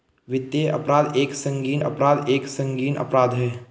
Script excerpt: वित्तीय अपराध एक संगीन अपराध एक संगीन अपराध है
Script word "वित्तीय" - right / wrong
right